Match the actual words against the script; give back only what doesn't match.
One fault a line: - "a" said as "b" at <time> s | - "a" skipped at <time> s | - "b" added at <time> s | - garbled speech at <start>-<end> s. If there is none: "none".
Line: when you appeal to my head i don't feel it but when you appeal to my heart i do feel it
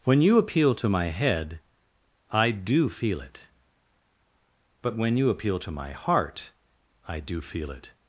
- "don't" said as "do" at 2.5 s